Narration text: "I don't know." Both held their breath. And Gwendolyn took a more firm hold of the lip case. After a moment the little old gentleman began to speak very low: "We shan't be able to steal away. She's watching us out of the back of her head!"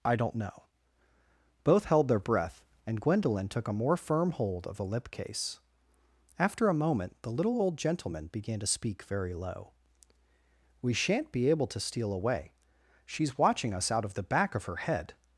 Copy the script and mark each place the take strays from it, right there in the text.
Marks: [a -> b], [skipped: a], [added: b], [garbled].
"I don't know." Both held their breath. And Gwendolyn took a more firm hold of the lip case. After a moment the little old gentleman began to speak very low: "We shan't be able to steal away. She's watching us out of the back of her head!"